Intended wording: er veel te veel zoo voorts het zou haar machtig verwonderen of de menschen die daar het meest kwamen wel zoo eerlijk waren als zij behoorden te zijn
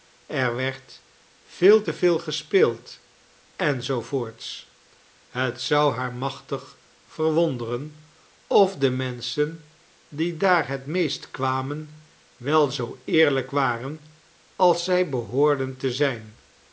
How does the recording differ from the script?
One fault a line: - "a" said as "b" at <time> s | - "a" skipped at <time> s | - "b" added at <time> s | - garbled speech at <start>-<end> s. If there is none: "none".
- "werd" added at 0.6 s
- "gespeeld en" added at 2.2 s